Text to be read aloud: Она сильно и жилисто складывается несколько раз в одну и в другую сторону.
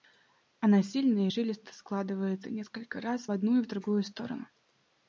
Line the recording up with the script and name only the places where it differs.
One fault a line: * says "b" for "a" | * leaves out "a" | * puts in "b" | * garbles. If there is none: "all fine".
all fine